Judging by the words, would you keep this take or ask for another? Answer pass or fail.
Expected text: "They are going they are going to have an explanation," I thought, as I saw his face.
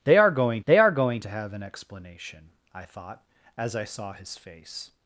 pass